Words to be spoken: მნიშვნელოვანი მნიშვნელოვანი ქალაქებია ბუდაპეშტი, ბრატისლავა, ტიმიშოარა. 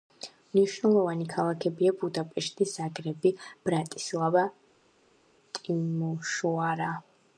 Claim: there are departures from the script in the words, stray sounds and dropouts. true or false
true